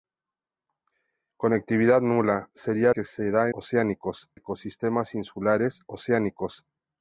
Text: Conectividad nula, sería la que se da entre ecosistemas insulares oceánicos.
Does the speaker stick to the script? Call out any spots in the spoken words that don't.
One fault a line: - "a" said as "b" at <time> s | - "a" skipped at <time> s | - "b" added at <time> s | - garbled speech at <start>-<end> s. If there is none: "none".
- "la" skipped at 2.9 s
- "entre" said as "oceánicos" at 3.5 s